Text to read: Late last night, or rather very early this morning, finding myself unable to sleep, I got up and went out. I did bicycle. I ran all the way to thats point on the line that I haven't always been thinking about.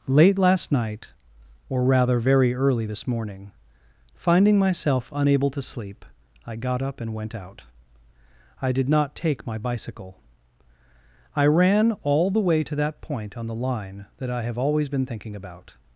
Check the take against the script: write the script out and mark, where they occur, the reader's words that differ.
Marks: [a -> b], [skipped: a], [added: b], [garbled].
Late last night, or rather very early this morning, finding myself unable to sleep, I got up and went out. I did [added: not take my] bicycle. I ran all the way to [thats -> that] point on the line that I [haven't -> have] always been thinking about.